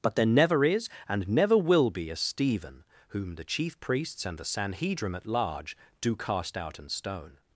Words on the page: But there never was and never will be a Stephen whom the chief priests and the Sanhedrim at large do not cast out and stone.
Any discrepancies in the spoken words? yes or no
yes